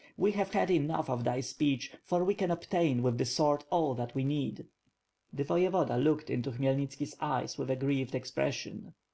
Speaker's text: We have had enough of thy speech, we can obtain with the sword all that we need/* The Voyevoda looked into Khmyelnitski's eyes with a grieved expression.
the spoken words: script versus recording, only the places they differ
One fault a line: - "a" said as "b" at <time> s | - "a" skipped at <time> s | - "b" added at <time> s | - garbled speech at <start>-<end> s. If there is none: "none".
- "for" added at 2.0 s